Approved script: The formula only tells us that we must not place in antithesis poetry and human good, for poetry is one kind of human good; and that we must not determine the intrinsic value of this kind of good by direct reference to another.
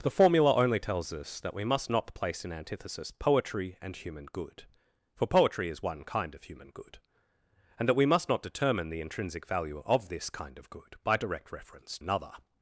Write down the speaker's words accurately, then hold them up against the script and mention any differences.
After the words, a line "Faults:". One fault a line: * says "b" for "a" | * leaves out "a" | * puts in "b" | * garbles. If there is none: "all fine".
The formula only tells us that we must not place in antithesis poetry and human good, for poetry is one kind of human good; and that we must not determine the intrinsic value of this kind of good by direct reference another.
Faults:
* leaves out "to"